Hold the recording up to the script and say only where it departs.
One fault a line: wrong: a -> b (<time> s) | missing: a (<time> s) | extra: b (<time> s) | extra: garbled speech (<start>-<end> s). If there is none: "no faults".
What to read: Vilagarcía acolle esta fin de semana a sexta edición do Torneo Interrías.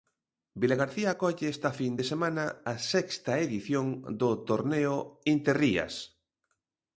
no faults